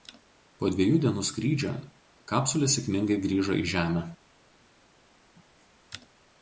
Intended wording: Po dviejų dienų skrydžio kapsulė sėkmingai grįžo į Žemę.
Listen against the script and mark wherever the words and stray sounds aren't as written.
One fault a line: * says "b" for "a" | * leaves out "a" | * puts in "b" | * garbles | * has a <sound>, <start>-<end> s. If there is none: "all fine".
all fine